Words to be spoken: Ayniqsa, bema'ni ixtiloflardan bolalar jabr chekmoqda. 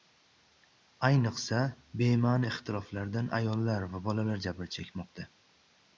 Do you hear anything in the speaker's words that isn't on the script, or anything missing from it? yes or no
yes